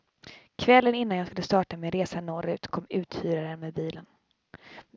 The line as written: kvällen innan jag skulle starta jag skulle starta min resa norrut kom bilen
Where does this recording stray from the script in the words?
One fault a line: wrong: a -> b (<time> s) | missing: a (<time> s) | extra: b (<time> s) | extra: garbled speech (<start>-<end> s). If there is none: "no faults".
missing: jag skulle starta (1.8 s)
extra: uthyraren med (2.9 s)